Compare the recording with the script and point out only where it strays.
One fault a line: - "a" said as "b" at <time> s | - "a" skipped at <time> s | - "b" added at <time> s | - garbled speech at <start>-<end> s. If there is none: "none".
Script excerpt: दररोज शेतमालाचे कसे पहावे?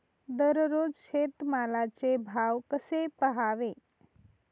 - "भाव" added at 2.3 s